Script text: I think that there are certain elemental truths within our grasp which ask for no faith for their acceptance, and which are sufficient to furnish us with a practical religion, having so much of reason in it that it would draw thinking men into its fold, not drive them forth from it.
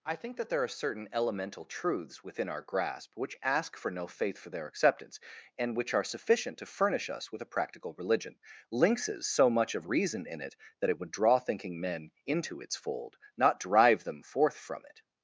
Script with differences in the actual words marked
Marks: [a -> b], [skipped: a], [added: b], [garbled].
I think that there are certain elemental truths within our grasp which ask for no faith for their acceptance, and which are sufficient to furnish us with a practical religion, [having -> lynxes] so much of reason in it that it would draw thinking men into its fold, not drive them forth from it.